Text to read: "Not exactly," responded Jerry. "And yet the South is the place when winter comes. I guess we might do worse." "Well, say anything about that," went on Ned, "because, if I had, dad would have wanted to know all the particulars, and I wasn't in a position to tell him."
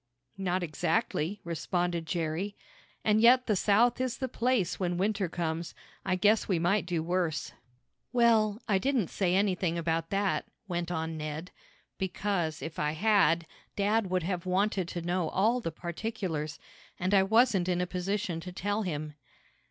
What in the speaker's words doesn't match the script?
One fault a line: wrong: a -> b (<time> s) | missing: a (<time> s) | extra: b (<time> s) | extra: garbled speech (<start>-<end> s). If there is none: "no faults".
extra: I didn't (8.7 s)